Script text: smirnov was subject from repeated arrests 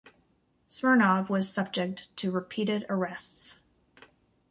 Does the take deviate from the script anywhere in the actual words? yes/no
yes